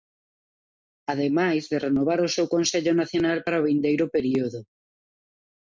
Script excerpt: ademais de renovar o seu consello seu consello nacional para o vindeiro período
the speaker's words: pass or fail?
fail